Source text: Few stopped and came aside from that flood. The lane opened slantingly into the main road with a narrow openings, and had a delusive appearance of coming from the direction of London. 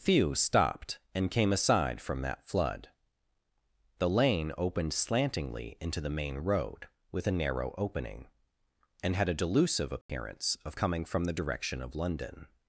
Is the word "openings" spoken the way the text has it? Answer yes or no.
no